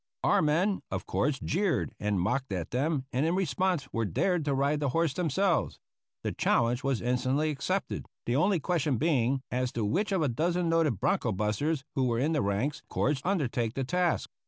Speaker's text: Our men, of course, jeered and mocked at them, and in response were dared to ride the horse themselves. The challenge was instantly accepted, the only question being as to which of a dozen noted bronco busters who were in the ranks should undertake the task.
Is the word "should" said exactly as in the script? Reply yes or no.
no